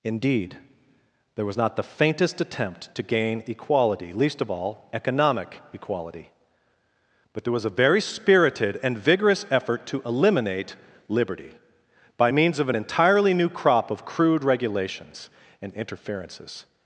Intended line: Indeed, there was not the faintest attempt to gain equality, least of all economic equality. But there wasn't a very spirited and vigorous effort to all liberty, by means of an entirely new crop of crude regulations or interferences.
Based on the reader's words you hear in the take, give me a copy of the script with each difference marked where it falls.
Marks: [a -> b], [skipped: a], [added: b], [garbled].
Indeed, there was not the faintest attempt to gain equality, least of all economic equality. But there [wasn't -> was] a very spirited and vigorous effort to [all -> eliminate] liberty, by means of an entirely new crop of crude regulations [or -> and] interferences.